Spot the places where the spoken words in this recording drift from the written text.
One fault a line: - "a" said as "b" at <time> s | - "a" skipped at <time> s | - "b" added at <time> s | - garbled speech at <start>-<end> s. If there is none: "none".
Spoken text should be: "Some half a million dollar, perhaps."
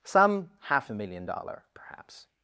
none